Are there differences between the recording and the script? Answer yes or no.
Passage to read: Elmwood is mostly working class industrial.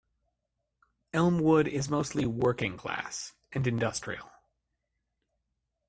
yes